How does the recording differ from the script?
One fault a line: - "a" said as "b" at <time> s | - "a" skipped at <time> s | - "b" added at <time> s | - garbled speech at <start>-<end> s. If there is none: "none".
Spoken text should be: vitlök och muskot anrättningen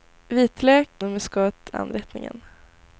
none